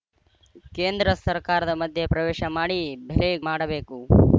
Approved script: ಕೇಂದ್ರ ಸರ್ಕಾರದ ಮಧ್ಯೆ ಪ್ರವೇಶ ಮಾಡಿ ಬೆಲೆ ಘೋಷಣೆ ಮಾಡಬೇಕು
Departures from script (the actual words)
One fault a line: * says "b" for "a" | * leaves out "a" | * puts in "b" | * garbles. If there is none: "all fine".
* leaves out "ಘೋಷಣೆ"